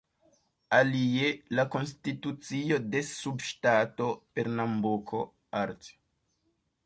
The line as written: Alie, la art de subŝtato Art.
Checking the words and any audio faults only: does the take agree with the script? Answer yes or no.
no